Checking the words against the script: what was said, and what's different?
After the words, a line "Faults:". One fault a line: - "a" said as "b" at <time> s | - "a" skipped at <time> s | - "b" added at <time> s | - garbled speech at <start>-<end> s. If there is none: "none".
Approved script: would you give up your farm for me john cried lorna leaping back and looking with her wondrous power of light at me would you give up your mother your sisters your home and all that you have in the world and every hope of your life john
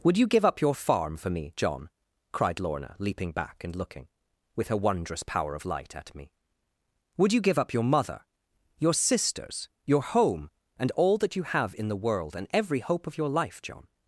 would you give up your farm for me john cried lorna leaping back and looking with her wondrous power of light at me would you give up your mother your sisters your home and all that you have in the world and every hope of your life john
Faults:
none